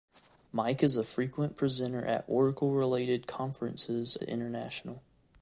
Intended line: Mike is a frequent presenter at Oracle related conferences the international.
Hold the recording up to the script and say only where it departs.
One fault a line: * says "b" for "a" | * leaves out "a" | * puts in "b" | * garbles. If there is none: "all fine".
all fine